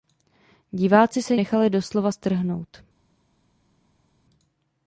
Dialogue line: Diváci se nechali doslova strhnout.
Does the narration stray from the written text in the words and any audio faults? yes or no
no